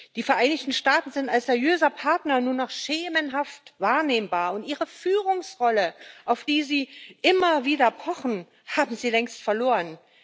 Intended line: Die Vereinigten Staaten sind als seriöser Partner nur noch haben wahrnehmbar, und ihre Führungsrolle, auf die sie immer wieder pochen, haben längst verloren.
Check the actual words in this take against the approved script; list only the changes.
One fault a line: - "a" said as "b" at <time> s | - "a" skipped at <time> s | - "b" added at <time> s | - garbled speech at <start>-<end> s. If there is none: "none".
- "haben" said as "schemenhaft" at 2.7 s
- "sie" added at 9.0 s